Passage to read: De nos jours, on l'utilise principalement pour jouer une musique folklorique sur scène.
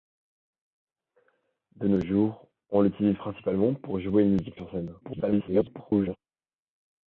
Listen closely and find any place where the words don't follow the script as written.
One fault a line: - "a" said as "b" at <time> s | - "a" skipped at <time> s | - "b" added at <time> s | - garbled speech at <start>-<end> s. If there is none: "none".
- "folklorique" skipped at 4.6 s
- garbled speech at 5.0-6.2 s